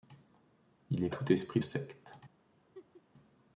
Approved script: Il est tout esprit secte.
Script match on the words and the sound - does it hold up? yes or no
no